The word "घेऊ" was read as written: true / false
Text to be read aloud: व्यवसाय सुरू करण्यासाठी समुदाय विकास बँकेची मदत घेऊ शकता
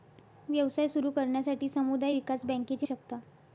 false